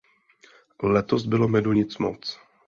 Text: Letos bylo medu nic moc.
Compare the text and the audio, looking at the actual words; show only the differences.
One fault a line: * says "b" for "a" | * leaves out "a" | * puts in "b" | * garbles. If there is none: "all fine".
all fine